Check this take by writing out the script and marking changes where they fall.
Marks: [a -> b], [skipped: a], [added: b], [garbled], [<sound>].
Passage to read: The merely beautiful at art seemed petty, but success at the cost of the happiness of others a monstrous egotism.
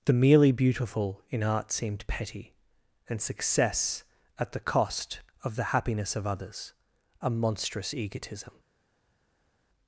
The merely beautiful [at -> in] art seemed petty, [but -> and] success at the cost of the happiness of others a monstrous egotism.